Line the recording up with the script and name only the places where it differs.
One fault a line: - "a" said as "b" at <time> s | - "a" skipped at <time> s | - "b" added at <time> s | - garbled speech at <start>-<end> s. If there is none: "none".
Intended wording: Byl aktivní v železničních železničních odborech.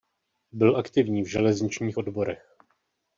- "železničních" skipped at 2.0 s